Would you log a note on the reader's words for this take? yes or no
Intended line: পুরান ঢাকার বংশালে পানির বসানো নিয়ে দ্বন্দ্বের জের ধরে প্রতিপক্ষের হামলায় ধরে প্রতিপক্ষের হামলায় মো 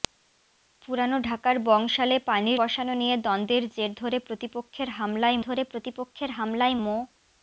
no